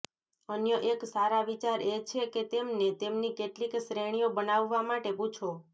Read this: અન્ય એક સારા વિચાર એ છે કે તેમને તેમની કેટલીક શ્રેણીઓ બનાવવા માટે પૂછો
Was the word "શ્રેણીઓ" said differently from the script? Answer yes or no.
no